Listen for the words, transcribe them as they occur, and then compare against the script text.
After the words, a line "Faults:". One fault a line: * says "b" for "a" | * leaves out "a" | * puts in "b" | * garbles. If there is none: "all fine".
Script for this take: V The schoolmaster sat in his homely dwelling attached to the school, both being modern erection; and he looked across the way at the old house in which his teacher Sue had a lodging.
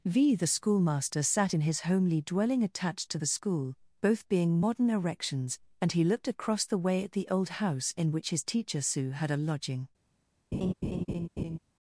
V The schoolmaster sat in his homely dwelling attached to the school, both being modern erections; and he looked across the way at the old house in which his teacher Sue had a lodging.
Faults:
* says "erections" for "erection"